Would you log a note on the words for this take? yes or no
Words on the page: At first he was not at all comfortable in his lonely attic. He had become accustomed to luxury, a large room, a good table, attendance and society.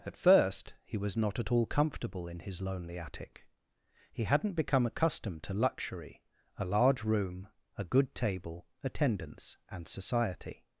yes